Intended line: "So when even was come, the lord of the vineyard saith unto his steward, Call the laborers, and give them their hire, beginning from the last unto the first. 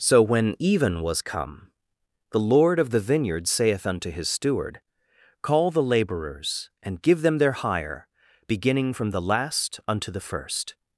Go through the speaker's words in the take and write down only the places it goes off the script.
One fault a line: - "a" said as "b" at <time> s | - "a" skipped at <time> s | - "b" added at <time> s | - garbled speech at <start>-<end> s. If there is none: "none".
none